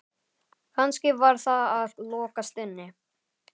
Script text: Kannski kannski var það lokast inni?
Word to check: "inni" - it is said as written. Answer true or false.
true